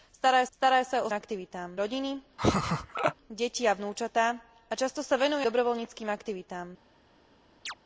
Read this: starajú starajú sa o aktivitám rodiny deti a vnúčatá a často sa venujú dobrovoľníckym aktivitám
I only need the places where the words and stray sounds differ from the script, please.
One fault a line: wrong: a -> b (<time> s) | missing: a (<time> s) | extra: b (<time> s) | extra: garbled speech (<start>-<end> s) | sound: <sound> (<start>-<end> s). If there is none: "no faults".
sound: laugh (2.4-3.1 s)
sound: chirp (7.7-7.7 s)